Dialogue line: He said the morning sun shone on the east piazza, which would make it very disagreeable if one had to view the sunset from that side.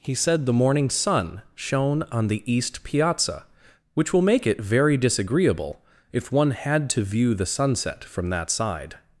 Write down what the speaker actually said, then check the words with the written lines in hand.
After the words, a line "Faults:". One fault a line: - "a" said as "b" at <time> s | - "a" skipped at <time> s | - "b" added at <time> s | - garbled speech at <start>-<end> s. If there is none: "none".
He said the morning sun shone on the east piazza, which will make it very disagreeable if one had to view the sunset from that side.
Faults:
- "would" said as "will" at 4.1 s